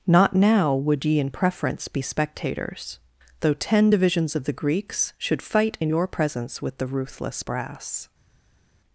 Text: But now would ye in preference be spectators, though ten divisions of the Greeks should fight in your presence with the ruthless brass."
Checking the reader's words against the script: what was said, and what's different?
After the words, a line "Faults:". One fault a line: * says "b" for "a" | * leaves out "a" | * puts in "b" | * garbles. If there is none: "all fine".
Not now would ye in preference be spectators, though ten divisions of the Greeks should fight in your presence with the ruthless brass."
Faults:
* says "Not" for "But"